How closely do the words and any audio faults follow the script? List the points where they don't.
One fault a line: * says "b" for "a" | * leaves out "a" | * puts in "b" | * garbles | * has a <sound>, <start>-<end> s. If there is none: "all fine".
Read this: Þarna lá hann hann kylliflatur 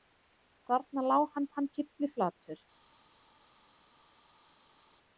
all fine